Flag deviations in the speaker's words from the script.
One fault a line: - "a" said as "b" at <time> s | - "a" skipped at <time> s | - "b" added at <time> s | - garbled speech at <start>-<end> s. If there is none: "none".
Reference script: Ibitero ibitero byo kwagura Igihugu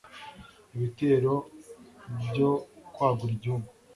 - "ibitero" skipped at 1.3 s